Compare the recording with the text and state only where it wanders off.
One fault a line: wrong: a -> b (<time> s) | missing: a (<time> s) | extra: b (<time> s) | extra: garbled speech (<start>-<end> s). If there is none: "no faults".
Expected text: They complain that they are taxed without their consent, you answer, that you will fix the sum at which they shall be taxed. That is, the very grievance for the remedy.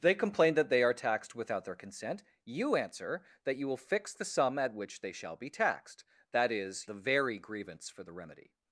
no faults